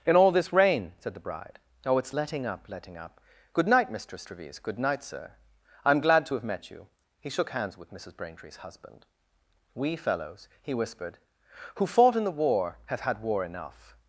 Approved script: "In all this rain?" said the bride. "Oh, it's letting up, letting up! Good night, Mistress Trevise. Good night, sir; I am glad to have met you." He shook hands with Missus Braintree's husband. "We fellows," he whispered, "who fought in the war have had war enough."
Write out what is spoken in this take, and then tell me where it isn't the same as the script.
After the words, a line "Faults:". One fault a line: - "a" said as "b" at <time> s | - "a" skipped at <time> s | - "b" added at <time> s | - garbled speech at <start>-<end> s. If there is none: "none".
"In all this rain?" said the bride. "Oh, it's letting up, letting up! Good night, Mistress Trevise. Good night, sir; I am glad to have met you." He shook hands with Missus Braintree's husband. "We fellows," he whispered, "who fought in the war have had war enough."
Faults:
none